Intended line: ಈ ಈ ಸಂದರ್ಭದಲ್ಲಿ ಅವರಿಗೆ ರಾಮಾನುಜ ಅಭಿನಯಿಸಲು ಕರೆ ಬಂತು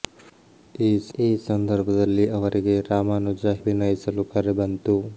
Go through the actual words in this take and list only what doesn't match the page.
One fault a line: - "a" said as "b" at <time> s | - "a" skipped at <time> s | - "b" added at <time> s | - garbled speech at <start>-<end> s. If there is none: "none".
none